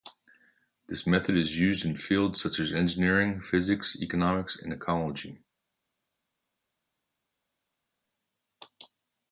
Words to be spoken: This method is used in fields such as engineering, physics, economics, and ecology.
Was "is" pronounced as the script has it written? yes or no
yes